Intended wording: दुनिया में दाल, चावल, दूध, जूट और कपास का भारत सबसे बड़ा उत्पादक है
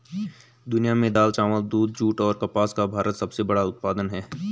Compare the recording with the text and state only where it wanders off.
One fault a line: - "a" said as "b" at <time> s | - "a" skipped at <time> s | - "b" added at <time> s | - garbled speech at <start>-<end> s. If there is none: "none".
none